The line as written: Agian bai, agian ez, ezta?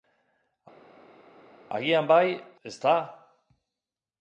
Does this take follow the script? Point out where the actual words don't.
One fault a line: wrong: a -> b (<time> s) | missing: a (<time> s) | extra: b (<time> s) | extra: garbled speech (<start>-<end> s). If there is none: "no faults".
missing: agian ez (2.3 s)